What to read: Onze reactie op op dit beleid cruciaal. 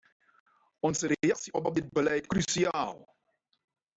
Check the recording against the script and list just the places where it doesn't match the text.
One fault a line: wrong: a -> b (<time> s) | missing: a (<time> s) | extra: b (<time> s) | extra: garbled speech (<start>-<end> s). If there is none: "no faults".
no faults